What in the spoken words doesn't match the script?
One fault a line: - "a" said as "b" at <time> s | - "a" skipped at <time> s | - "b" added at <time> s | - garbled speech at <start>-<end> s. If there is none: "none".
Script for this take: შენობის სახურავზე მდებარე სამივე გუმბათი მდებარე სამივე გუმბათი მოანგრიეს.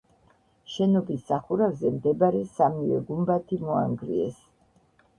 - "მდებარე სამივე გუმბათი" skipped at 3.6 s